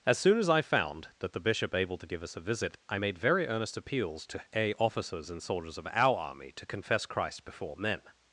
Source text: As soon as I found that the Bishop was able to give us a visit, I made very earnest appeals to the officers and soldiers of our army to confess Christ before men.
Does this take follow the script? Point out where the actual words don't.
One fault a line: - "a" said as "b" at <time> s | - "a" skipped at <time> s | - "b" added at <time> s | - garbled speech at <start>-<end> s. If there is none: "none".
- "was" skipped at 1.8 s
- "the" said as "a" at 4.5 s